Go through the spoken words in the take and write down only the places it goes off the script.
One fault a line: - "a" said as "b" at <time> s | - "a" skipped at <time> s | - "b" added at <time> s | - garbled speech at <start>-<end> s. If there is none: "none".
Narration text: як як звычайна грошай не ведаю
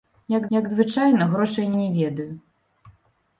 none